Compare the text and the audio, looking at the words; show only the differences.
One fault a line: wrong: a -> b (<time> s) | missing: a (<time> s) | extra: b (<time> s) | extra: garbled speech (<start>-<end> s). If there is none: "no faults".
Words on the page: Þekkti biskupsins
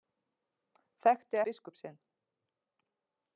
no faults